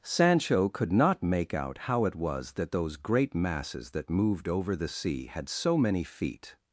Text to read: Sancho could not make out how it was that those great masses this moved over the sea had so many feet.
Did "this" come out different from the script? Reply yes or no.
yes